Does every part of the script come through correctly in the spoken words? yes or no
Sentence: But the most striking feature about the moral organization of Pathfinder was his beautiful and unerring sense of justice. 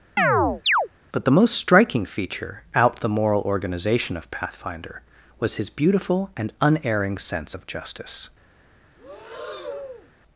no